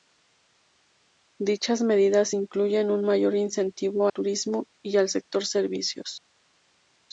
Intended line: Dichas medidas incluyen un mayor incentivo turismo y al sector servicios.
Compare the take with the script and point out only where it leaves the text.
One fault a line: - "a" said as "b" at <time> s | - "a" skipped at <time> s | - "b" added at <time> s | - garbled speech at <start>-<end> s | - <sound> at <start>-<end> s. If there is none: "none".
none